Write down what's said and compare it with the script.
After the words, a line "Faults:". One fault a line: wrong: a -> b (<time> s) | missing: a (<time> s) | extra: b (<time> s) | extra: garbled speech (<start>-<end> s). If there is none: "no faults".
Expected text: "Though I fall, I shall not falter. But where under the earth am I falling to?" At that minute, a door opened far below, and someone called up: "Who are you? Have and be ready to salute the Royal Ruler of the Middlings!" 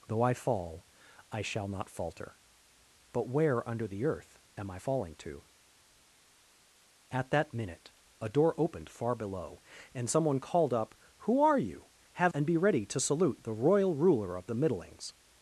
"Though I fall, I shall not falter. But where under the earth am I falling to?" At that minute, a door opened far below, and someone called up: "Who are you? Have and be ready to salute the Royal Ruler of the Middlings!"
Faults:
no faults